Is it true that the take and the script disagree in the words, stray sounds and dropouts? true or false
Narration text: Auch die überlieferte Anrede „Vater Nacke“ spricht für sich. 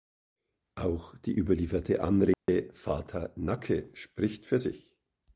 true